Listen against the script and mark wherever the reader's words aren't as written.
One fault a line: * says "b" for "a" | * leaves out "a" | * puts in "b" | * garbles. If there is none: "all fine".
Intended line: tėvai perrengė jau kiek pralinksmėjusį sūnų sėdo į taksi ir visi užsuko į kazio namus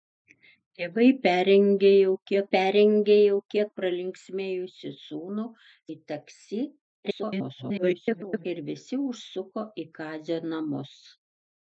* puts in "perrengė jau kiek"
* leaves out "sėdo"
* garbles